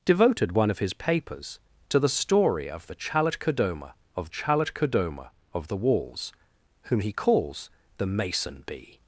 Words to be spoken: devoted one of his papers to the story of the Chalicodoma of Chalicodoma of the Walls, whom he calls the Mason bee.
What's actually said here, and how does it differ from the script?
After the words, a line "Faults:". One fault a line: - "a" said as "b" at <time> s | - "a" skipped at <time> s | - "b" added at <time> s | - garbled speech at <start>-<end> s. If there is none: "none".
devoted one of his papers to the story of the Chalicodoma of Chalicodoma of the Walls, whom he calls the Mason bee.
Faults:
none